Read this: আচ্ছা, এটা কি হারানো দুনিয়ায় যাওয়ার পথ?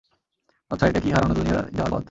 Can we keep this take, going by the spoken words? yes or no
yes